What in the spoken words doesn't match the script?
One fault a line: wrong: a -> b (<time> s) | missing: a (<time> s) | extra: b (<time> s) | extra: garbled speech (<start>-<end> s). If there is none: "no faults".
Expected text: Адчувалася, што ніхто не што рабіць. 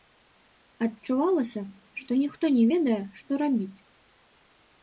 extra: ведае (2.7 s)